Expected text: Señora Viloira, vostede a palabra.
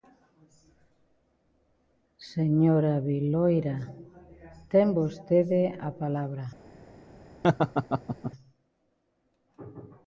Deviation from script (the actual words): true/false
true